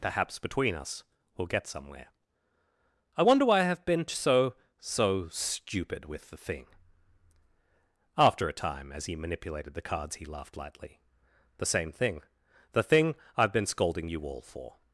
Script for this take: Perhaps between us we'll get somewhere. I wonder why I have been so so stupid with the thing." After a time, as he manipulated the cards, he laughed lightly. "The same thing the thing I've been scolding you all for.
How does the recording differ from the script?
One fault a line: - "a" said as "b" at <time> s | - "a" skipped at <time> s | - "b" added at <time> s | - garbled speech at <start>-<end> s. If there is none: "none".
none